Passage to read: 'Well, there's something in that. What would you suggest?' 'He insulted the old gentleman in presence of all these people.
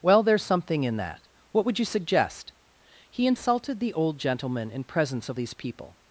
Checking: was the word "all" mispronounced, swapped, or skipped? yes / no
yes